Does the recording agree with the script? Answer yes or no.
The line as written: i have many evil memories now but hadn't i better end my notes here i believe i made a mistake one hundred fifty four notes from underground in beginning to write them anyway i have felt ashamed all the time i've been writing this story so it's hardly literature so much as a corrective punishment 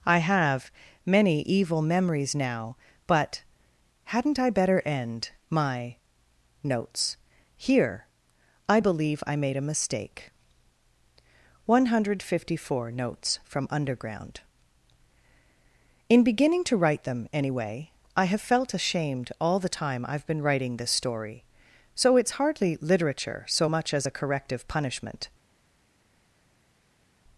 yes